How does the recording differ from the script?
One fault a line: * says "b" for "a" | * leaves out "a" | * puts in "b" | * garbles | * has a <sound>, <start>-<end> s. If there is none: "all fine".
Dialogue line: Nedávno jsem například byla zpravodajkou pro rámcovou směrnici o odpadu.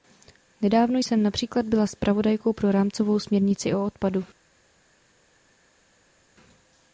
all fine